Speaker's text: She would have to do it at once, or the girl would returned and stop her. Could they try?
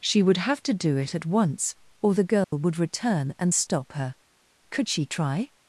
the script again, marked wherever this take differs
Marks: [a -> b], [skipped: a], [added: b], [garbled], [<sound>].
She would have to do it at once, or the girl [dropout] would [returned -> return] and stop her. Could [they -> she] try?